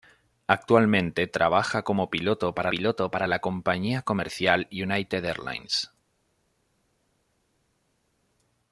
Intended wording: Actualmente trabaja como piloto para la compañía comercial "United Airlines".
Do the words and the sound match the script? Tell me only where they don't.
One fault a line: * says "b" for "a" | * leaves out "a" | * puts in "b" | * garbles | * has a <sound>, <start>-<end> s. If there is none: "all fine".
* puts in "piloto para"